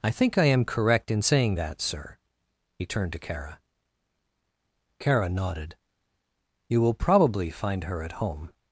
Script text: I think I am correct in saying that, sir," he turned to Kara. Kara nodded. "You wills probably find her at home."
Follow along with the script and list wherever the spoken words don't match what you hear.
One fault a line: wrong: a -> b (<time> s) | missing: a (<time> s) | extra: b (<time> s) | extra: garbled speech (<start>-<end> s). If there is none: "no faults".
wrong: wills -> will (6.8 s)